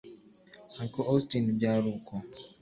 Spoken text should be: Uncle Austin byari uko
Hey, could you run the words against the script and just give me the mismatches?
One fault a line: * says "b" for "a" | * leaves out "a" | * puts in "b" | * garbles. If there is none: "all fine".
all fine